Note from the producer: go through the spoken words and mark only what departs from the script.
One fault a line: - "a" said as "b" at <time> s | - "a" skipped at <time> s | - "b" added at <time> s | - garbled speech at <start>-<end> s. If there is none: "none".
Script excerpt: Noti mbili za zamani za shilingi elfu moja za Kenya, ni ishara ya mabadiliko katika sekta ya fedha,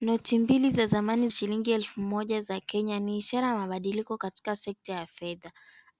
- "za" skipped at 1.3 s